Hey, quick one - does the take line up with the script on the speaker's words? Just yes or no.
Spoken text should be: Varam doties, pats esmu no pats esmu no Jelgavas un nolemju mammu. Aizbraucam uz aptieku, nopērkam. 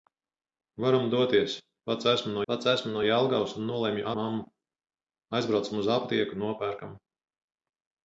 yes